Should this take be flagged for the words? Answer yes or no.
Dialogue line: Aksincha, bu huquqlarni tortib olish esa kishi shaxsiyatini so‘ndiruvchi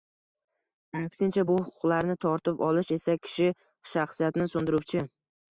no